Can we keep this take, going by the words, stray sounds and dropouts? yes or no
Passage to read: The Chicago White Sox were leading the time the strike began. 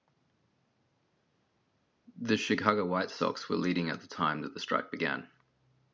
no